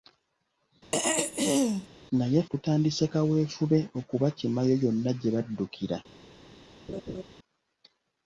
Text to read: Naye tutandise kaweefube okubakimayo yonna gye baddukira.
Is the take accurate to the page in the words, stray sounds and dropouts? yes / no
no